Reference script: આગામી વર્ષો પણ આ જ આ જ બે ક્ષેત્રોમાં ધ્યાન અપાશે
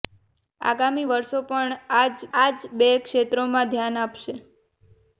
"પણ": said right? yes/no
yes